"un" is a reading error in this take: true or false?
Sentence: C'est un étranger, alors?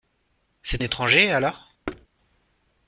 true